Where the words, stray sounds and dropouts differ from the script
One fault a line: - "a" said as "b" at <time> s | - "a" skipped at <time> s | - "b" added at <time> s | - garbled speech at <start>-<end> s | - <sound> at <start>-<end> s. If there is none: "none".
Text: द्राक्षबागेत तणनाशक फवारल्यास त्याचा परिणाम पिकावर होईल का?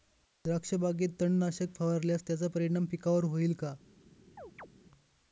- chirp at 4.4-4.7 s